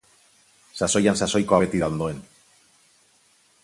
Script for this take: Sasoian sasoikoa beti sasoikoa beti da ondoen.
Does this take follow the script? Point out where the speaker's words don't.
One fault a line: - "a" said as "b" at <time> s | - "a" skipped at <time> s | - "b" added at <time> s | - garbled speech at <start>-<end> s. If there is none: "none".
- "sasoikoa beti" skipped at 1.8 s